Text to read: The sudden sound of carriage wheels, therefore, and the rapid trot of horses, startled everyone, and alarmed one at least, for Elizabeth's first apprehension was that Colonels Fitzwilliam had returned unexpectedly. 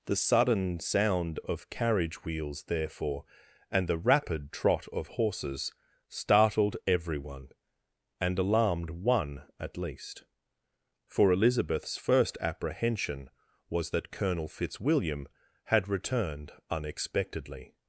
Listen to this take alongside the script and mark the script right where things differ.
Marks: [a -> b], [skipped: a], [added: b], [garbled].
The sudden sound of carriage wheels, therefore, and the rapid trot of horses, startled everyone, and alarmed one at least, for Elizabeth's first apprehension was that [Colonels -> Colonel] Fitzwilliam had returned unexpectedly.